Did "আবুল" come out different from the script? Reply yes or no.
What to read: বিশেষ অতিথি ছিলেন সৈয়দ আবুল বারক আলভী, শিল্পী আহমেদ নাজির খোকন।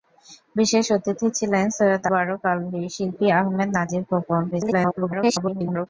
yes